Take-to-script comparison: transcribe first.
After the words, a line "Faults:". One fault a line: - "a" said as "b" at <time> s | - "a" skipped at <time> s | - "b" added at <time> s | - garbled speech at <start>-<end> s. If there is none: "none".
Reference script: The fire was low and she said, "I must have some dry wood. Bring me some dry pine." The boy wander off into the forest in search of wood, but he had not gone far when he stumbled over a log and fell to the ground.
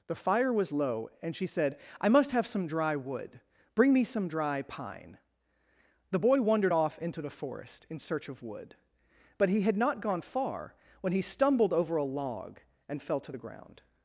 The fire was low and she said, "I must have some dry wood. Bring me some dry pine." The boy wandered off into the forest in search of wood, but he had not gone far when he stumbled over a log and fell to the ground.
Faults:
- "wander" said as "wandered" at 6.4 s